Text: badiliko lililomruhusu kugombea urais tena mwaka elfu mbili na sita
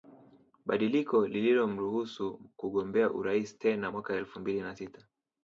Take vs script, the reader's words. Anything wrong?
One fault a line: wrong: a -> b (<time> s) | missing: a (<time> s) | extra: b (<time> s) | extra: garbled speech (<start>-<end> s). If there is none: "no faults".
no faults